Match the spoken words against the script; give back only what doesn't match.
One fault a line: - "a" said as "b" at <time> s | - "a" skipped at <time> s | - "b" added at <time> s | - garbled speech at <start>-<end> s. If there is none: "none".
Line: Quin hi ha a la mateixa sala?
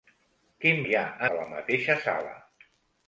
none